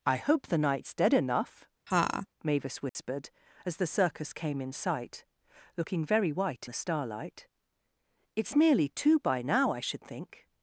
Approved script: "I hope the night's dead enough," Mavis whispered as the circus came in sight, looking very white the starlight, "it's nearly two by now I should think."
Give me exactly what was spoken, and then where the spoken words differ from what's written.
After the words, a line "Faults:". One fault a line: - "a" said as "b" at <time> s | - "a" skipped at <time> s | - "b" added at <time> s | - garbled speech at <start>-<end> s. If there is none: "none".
"I hope the night's dead enough," Mavis whispered as the circus came in sight, looking very white the starlight, "it's nearly two by now I should think."
Faults:
none